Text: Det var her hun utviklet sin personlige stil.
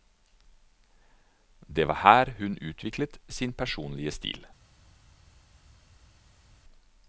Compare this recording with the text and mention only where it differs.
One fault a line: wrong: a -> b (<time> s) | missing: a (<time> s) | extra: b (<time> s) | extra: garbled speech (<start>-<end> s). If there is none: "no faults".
no faults